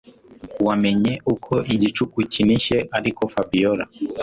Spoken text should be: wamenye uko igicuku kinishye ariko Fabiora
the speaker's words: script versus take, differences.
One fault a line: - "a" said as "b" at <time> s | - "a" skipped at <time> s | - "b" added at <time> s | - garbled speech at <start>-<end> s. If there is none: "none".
none